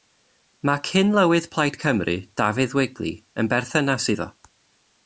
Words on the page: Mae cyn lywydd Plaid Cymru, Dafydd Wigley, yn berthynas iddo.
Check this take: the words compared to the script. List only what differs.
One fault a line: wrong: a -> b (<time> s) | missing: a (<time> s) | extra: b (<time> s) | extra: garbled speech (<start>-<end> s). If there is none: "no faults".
no faults